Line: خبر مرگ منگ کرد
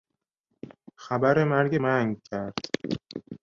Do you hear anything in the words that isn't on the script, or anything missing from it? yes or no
no